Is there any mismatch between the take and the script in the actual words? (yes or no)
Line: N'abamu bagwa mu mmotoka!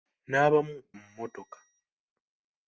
yes